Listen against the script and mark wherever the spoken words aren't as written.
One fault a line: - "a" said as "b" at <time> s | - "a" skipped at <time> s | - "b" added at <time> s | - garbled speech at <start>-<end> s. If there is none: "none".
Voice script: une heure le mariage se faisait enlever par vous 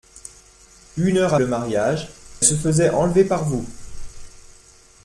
none